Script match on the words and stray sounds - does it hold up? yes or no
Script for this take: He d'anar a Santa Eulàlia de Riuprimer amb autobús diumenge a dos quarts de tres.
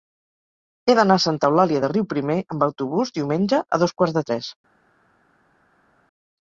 yes